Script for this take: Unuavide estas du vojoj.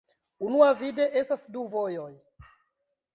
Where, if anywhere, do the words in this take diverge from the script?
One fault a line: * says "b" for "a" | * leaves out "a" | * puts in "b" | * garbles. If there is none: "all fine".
all fine